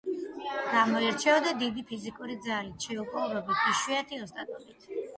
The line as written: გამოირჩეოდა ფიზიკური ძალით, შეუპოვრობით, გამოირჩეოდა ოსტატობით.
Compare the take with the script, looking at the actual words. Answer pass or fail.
fail